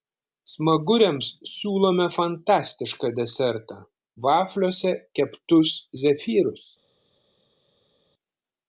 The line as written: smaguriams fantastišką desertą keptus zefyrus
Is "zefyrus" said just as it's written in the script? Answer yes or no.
yes